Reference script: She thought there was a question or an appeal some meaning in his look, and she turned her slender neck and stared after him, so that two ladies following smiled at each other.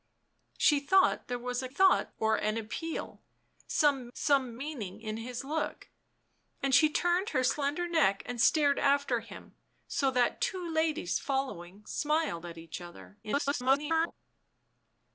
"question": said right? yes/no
no